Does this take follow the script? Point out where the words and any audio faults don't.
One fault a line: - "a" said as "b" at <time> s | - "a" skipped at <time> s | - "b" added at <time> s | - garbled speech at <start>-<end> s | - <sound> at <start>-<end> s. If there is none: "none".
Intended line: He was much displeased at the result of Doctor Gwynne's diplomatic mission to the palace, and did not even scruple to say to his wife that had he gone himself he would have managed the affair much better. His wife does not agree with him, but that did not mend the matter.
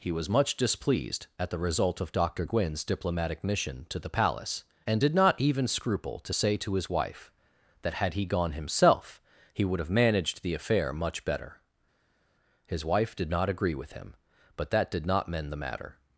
- "does" said as "did" at 13.2 s